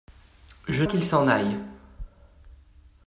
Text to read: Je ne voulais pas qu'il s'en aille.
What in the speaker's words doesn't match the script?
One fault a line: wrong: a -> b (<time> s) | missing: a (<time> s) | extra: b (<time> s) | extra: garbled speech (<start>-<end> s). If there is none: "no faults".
missing: ne voulais pas (0.8 s)